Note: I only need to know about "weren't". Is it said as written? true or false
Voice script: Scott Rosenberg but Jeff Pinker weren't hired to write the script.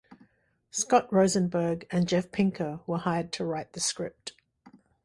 false